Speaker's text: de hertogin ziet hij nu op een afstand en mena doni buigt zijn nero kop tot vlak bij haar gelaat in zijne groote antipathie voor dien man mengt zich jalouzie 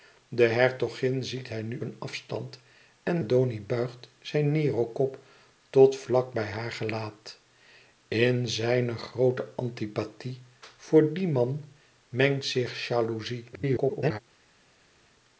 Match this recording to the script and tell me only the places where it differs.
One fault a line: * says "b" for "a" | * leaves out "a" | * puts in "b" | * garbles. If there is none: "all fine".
* leaves out "op"
* leaves out "mena"
* garbles